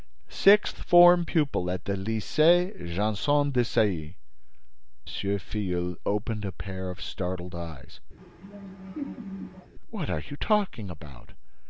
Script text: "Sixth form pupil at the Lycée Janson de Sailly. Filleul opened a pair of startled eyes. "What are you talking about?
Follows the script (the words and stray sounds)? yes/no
no